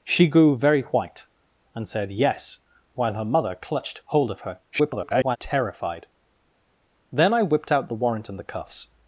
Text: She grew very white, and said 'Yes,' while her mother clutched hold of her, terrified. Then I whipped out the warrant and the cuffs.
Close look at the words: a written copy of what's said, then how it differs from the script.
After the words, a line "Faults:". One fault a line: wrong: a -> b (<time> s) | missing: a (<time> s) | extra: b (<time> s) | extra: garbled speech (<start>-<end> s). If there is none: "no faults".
She grew very white, and said 'Yes,' while her mother clutched hold of her, [garbled] terrified. Then I whipped out the warrant and the cuffs.
Faults:
extra: garbled speech (4.7-5.4 s)